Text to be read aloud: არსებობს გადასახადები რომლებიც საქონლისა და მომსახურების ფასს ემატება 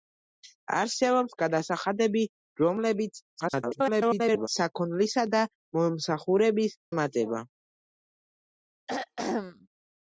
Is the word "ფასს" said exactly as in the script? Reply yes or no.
no